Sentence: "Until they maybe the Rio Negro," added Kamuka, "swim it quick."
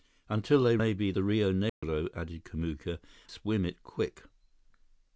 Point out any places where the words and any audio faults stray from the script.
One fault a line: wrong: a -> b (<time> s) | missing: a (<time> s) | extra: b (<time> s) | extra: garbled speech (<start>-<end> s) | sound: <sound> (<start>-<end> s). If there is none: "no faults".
sound: dropout (1.7-1.8 s)